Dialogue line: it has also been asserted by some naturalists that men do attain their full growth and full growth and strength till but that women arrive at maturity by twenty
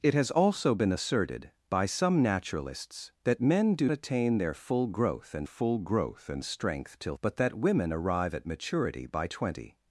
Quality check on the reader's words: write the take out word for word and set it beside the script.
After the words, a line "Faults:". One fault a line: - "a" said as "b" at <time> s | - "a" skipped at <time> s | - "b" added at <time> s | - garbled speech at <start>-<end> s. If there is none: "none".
it has also been asserted by some naturalists that men do attain their full growth and full growth and strength till but that women arrive at maturity by twenty
Faults:
none